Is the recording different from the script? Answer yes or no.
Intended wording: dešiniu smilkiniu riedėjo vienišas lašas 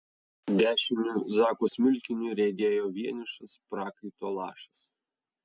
yes